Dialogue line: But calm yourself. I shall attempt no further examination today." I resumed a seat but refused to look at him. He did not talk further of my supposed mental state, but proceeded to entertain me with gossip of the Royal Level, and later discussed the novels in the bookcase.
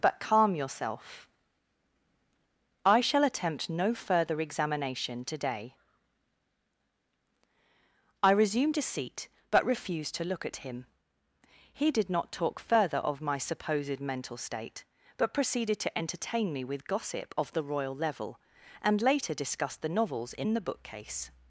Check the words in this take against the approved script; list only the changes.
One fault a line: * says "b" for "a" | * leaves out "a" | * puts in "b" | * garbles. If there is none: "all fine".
all fine